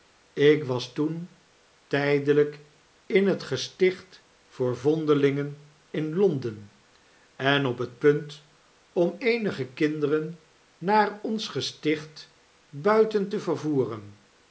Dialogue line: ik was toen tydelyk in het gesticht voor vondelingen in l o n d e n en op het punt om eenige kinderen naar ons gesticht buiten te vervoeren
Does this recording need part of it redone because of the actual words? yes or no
no